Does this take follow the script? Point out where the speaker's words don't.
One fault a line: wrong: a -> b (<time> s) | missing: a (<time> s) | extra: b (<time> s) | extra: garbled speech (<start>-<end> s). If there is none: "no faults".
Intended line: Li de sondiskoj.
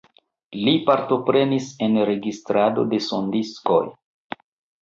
extra: partoprenis en registrado (0.9 s)